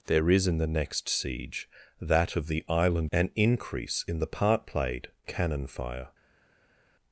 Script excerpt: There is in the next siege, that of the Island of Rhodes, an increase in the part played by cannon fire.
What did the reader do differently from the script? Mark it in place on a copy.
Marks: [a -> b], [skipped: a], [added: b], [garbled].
There is in the next siege, that of the Island [skipped: of Rhodes,] an increase in the part played [skipped: by] cannon fire.